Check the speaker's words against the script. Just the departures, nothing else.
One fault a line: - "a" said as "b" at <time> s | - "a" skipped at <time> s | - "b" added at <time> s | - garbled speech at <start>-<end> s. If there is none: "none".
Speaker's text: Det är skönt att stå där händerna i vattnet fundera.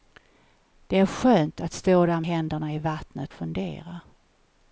none